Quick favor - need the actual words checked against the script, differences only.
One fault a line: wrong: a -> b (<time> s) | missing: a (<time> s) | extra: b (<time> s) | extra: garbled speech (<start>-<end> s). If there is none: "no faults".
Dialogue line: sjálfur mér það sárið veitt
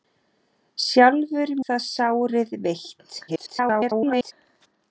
missing: mér (1.5 s)
extra: garbled speech (3.3-4.3 s)